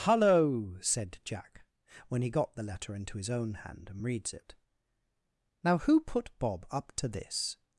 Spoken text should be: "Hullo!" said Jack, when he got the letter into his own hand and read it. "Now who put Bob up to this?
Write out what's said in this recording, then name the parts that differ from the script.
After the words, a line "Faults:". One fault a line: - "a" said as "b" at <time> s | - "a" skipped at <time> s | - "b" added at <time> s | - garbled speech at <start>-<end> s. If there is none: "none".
"Hullo!" said Jack, when he got the letter into his own hand and reads it. "Now who put Bob up to this?
Faults:
- "read" said as "reads" at 4.0 s